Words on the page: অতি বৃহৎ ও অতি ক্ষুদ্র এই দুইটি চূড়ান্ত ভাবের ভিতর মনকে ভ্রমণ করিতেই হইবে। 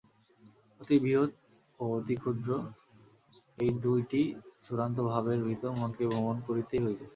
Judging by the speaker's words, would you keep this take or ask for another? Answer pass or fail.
pass